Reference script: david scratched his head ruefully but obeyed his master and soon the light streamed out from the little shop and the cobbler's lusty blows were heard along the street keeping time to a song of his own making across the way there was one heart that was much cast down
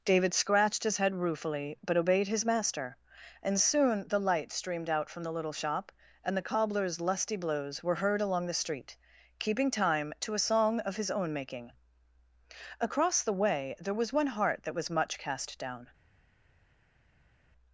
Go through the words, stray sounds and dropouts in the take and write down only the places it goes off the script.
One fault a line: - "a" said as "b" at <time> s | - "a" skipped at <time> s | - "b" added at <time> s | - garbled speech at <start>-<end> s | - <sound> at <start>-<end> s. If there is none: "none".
none